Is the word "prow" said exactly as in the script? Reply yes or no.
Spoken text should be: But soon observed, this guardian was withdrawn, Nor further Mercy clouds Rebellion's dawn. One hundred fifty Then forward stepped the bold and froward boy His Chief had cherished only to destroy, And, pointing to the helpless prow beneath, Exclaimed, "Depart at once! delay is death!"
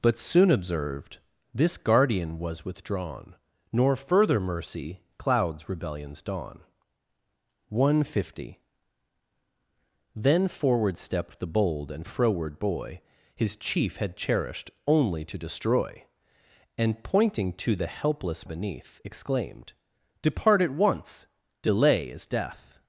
no